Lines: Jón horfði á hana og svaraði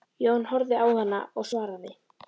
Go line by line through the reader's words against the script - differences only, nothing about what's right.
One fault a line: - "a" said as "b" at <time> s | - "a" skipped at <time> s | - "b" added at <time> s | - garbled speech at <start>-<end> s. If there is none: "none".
none